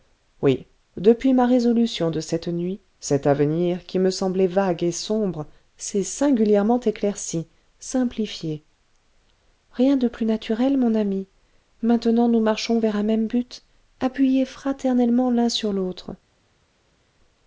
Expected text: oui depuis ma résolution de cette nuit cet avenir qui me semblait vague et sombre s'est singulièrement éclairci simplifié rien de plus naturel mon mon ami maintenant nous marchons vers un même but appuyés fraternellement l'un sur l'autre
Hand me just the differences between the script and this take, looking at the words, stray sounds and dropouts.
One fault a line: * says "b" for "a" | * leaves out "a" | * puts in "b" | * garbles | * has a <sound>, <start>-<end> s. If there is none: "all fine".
* leaves out "mon"